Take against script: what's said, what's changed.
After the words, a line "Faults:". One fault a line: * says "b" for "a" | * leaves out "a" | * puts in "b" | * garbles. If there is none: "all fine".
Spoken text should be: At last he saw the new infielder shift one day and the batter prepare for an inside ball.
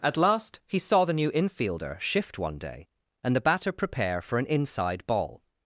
At last he saw the new infielder shift one day and the batter prepare for an inside ball.
Faults:
all fine